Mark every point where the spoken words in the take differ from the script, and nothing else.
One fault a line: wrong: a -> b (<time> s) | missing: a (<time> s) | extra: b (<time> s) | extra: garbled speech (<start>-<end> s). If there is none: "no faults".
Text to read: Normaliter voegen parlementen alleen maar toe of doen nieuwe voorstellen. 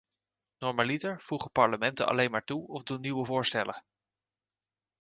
no faults